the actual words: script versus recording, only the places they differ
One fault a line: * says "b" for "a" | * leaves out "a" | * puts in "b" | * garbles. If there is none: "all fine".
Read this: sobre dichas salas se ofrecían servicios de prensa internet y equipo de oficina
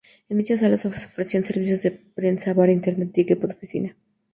* says "en" for "sobre"
* puts in "bar"